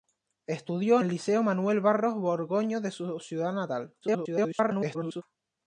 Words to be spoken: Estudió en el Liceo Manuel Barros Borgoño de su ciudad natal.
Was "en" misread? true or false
true